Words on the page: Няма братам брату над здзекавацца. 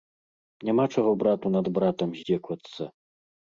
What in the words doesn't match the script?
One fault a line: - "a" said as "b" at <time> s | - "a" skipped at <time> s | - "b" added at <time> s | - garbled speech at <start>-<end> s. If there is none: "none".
- "братам" said as "чаго" at 0.9 s
- "братам" added at 1.8 s